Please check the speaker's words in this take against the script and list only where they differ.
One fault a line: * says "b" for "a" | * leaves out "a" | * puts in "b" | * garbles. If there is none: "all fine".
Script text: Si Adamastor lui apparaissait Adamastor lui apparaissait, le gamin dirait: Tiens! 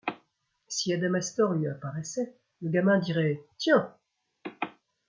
* leaves out "Adamastor lui apparaissait"